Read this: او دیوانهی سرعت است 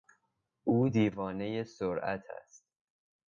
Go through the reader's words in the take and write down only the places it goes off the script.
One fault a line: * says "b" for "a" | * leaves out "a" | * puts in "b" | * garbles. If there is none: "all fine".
all fine